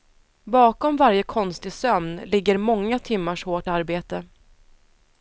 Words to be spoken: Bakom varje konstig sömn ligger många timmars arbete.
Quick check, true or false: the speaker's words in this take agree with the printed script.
false